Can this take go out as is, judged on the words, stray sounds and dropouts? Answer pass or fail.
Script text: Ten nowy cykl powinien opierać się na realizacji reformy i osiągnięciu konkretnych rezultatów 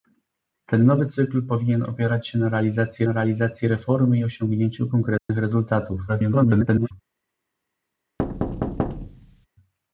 fail